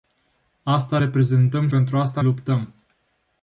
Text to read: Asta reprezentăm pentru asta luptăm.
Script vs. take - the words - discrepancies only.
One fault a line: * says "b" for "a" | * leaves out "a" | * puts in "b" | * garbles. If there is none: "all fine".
all fine